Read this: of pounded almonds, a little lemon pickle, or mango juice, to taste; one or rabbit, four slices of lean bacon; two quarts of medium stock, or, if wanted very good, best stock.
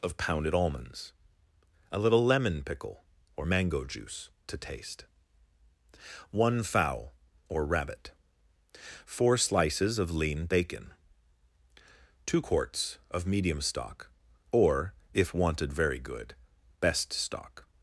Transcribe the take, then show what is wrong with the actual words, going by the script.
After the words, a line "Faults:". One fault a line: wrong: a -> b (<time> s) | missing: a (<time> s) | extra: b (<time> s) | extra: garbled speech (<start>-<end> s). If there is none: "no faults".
of pounded almonds, a little lemon pickle, or mango juice, to taste; one fowl or rabbit, four slices of lean bacon; two quarts of medium stock, or, if wanted very good, best stock.
Faults:
extra: fowl (6.6 s)